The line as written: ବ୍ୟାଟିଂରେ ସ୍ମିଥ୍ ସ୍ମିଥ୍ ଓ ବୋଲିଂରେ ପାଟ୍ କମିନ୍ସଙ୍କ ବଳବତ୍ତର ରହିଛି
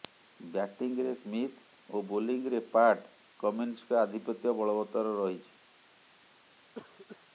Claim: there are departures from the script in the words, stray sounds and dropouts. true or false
true